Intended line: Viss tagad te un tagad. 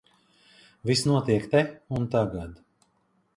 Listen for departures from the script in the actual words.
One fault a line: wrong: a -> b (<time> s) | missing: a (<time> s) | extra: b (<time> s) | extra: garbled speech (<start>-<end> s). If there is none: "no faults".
wrong: tagad -> notiek (1.1 s)